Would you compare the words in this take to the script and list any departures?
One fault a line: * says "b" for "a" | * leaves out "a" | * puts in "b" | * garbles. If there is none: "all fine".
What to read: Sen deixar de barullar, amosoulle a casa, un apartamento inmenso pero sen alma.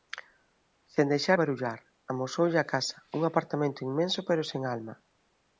* leaves out "de"